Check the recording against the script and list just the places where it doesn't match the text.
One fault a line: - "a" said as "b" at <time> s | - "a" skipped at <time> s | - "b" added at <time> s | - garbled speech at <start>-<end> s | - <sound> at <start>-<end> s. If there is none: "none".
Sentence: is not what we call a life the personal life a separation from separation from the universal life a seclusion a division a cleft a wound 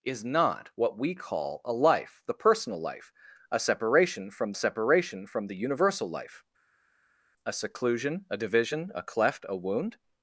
none